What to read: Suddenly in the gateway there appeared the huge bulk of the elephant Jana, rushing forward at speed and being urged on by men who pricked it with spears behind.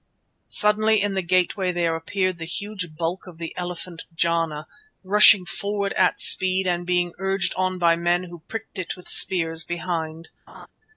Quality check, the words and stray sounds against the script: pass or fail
fail